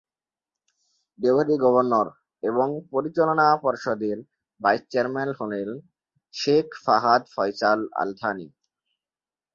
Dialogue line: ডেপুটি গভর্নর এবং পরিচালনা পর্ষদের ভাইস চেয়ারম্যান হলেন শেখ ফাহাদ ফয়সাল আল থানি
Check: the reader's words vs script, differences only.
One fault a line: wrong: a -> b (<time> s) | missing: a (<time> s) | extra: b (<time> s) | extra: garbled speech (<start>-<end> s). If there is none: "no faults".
no faults